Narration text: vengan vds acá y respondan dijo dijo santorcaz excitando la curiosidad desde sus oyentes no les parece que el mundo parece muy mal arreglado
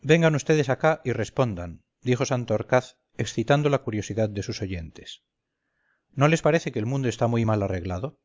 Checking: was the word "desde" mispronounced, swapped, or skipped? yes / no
yes